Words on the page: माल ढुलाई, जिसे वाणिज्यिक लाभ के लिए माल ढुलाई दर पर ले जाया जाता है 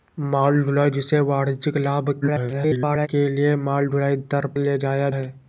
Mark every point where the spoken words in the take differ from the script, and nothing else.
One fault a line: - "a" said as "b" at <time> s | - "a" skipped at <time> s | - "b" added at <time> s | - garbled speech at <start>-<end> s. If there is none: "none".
- garbled speech at 2.2-3.1 s
- "पर" skipped at 4.5 s
- "जाता" skipped at 5.1 s